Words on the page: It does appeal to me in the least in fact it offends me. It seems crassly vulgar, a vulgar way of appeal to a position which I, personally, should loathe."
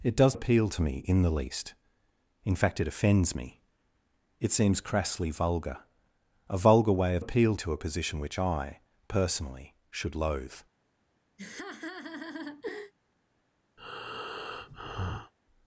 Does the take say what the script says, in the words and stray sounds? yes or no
no